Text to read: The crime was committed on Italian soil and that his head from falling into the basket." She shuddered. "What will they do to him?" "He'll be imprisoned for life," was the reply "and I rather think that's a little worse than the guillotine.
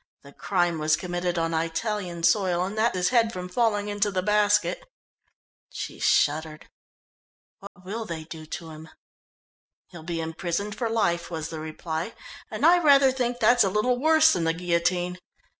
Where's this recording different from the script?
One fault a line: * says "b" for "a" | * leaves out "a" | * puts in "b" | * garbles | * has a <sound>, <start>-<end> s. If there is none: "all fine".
* has a dropout, 7.7-7.8 s